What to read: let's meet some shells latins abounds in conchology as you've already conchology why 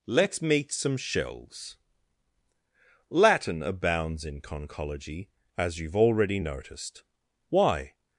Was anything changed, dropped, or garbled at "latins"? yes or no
yes